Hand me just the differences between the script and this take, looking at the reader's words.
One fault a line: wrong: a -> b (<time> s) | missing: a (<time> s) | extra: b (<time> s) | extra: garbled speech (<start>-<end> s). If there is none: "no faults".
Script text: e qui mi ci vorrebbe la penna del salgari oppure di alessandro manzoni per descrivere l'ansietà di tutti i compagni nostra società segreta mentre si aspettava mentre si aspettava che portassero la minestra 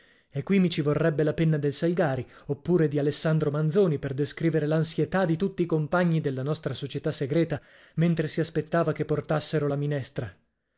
extra: della (6.2 s)
missing: mentre si aspettava (8.9 s)